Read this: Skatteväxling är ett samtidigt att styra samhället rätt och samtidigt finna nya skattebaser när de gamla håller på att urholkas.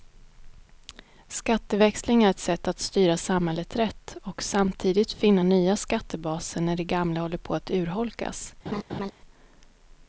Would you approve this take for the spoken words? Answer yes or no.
no